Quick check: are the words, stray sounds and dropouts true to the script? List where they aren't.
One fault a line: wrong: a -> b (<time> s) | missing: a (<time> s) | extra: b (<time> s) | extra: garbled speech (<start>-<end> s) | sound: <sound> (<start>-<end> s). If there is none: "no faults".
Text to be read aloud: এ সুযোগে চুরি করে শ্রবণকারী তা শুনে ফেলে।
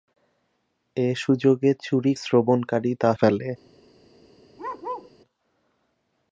missing: করে (2.1 s)
missing: শুনে (3.1 s)
sound: bark (4.6-5.1 s)